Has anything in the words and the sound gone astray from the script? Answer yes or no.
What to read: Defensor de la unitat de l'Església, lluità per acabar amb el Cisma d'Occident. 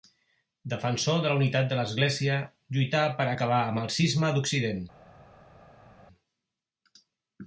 no